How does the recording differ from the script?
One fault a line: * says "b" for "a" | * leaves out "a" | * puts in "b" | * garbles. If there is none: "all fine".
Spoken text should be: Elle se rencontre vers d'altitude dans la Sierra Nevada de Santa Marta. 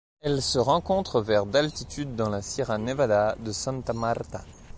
all fine